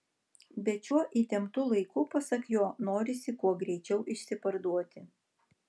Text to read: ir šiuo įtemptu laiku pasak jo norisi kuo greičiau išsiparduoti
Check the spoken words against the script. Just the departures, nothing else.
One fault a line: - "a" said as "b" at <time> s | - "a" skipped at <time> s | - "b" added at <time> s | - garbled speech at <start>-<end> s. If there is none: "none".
- "ir" said as "bet" at 0.7 s